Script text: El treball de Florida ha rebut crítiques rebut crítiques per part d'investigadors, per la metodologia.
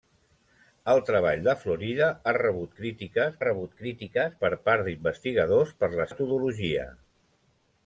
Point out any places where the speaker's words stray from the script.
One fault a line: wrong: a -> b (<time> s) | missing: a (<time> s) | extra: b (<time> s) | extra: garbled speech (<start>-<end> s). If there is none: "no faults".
no faults